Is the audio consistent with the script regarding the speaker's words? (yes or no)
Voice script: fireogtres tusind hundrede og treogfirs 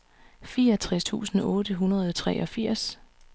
no